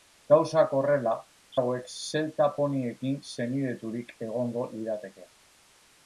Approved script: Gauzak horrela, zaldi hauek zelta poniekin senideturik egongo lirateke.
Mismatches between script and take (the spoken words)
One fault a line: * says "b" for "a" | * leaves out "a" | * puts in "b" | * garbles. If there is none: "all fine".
* leaves out "zaldi"